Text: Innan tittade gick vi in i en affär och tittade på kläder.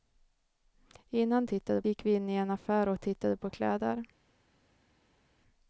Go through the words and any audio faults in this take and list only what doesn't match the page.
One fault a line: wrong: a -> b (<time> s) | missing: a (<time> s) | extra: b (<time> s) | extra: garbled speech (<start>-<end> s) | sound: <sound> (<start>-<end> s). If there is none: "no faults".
no faults